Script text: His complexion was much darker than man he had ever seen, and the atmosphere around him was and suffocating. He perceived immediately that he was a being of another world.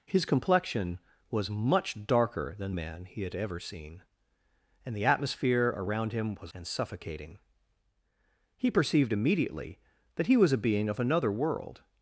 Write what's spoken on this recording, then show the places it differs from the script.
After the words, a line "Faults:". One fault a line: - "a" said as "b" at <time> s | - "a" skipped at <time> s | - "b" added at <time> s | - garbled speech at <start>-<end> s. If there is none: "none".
His complexion was much darker than man he had ever seen, and the atmosphere around him was and suffocating. He perceived immediately that he was a being of another world.
Faults:
none